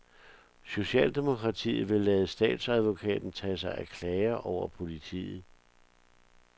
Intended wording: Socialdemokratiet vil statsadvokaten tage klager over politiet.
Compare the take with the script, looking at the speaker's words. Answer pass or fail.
fail